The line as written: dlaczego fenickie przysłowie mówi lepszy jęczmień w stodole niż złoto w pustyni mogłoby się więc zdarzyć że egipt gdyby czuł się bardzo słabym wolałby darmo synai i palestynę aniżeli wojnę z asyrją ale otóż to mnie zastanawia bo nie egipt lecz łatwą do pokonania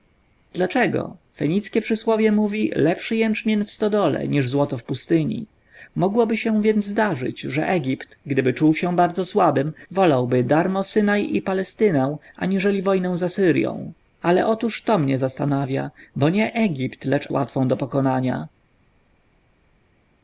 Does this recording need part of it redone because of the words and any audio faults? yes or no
no